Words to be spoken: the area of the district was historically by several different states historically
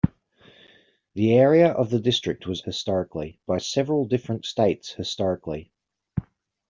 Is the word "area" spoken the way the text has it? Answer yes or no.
yes